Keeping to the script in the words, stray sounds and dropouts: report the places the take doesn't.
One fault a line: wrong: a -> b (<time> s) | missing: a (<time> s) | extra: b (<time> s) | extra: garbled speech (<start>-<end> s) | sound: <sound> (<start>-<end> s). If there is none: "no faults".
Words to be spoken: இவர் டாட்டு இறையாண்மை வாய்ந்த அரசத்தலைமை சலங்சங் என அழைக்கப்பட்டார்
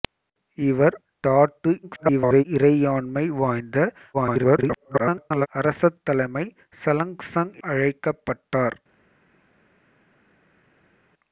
extra: garbled speech (1.8-2.4 s)
extra: garbled speech (4.1-5.5 s)
missing: என (7.5 s)